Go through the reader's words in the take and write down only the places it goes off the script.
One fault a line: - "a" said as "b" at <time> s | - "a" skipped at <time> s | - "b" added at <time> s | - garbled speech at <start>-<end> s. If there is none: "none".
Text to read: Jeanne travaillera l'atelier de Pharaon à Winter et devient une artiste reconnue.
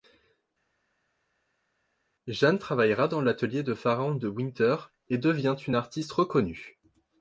- "dans" added at 3.1 s
- "à" said as "de" at 4.1 s